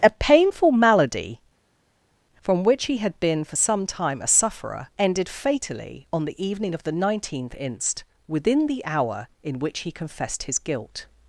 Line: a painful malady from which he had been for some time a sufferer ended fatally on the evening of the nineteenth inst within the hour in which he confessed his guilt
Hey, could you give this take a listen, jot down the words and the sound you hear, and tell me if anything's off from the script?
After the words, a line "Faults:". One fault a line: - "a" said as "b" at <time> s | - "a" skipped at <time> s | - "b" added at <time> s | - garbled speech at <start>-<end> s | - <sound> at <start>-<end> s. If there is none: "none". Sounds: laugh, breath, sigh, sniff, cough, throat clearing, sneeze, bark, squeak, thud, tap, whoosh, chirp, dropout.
a painful malady from which he had been for some time a sufferer ended fatally on the evening of the nineteenth inst within the hour in which he confessed his guilt
Faults:
none